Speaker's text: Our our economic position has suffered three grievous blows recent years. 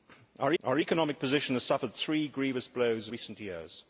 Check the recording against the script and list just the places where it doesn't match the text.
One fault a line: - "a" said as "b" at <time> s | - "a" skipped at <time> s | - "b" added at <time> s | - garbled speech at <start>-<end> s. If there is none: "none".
none